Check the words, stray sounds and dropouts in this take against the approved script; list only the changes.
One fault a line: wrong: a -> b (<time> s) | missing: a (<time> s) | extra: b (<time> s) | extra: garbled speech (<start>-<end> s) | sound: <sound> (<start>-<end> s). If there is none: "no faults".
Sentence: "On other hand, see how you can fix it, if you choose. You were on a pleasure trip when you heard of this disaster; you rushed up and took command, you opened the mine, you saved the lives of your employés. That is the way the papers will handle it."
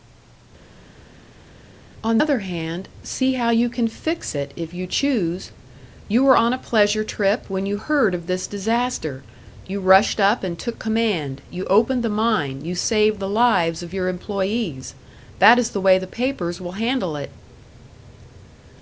no faults